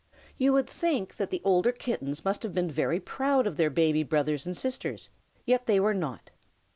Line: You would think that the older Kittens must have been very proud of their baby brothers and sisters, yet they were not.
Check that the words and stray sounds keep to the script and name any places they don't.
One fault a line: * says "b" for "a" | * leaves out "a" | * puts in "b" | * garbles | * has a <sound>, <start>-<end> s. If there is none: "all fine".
all fine